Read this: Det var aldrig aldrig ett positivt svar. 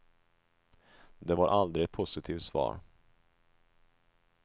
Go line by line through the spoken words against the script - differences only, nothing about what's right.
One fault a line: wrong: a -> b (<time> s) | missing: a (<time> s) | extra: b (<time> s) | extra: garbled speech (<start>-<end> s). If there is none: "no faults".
missing: aldrig (1.8 s)